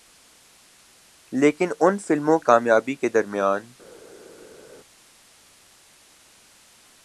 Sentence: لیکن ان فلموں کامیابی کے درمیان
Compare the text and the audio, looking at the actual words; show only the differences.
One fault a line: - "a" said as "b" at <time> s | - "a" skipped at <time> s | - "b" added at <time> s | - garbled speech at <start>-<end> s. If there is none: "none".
none